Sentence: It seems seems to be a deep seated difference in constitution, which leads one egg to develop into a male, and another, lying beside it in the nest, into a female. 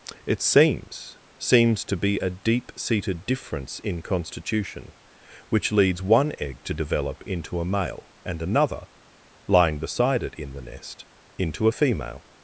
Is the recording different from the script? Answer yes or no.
no